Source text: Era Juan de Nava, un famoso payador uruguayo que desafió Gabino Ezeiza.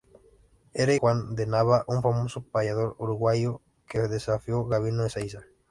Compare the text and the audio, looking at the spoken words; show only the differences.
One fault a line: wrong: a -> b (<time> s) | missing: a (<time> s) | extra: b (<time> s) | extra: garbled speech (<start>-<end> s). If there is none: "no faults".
no faults